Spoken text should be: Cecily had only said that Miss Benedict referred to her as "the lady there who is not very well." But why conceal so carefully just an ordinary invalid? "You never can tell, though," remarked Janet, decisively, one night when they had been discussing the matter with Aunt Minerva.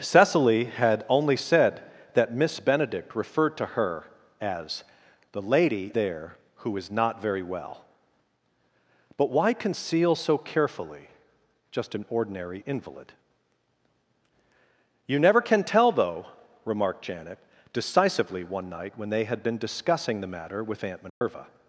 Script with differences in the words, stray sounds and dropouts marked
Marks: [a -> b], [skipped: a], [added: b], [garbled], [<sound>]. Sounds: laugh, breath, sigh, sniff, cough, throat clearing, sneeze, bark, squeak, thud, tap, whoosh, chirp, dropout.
Cecily had only said that Miss Benedict referred to her as "the lady there who is not very well." But why conceal so carefully just an ordinary invalid? "You never can tell, though," remarked Janet, decisively, one night when they had been discussing the matter with Aunt Minerva. [dropout]